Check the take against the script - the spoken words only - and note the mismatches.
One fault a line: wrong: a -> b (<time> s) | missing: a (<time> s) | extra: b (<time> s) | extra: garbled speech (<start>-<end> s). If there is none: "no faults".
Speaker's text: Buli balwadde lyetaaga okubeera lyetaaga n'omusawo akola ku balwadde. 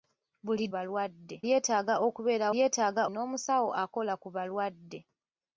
no faults